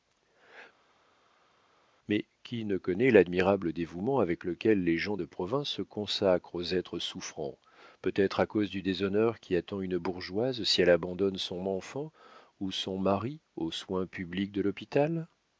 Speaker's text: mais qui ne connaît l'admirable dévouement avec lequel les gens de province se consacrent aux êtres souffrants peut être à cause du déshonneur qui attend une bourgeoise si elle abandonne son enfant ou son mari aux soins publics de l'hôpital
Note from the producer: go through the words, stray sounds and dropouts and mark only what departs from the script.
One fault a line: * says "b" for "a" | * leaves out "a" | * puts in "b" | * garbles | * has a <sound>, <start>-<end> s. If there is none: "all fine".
all fine